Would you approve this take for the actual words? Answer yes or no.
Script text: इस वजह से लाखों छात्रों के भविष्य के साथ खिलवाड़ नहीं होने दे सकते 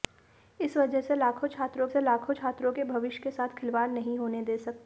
no